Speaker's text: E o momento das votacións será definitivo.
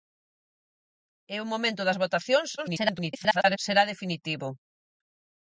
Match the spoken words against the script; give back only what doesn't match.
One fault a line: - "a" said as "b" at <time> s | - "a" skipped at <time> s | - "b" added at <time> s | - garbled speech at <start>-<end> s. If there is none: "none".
- garbled speech at 2.6-3.6 s